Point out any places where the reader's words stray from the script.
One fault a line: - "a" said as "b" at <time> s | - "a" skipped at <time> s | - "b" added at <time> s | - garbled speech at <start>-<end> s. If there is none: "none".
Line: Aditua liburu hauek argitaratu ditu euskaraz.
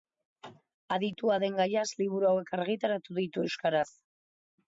- "den gaiaz" added at 1.4 s